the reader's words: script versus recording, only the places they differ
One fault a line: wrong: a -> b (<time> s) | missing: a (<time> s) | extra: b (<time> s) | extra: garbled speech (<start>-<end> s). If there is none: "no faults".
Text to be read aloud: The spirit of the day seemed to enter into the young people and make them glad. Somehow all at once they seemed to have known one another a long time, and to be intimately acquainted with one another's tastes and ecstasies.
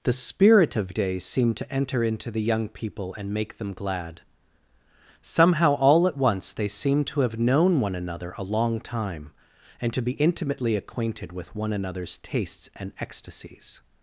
missing: the (0.9 s)